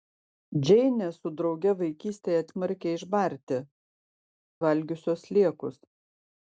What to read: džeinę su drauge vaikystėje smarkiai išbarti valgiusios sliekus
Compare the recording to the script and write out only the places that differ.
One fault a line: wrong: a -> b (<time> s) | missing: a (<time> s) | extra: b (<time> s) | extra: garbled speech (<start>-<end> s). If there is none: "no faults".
no faults